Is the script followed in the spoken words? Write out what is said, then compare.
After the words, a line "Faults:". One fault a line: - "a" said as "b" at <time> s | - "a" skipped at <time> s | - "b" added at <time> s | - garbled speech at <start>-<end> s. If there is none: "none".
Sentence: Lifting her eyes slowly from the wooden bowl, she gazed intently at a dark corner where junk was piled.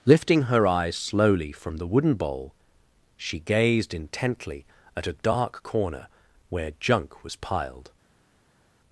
Lifting her eyes slowly from the wooden bowl, she gazed intently at a dark corner where junk was piled.
Faults:
none